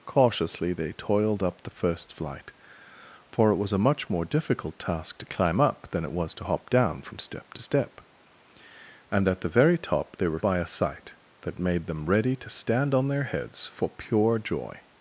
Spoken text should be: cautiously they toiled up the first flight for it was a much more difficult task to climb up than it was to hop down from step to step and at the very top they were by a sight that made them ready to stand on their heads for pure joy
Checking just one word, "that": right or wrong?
right